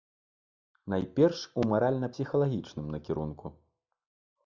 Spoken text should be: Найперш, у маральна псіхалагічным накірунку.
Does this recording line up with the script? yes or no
yes